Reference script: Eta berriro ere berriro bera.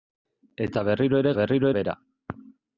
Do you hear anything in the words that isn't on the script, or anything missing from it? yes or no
no